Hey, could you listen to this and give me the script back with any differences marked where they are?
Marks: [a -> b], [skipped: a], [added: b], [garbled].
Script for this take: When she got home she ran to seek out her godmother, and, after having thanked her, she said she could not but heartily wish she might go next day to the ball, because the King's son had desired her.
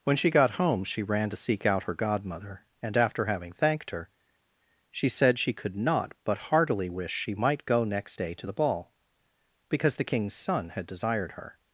When she got home she ran to seek out her godmother, and, after having thanked her, she said she could not but heartily wish she might go next day to the ball, because the King's son had desired her.